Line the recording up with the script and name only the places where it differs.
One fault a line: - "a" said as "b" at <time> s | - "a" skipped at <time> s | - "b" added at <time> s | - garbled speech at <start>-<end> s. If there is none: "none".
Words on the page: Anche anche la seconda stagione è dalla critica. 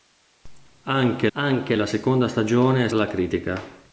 none